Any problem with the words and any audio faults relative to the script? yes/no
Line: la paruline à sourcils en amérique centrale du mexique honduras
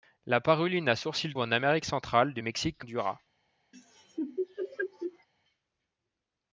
yes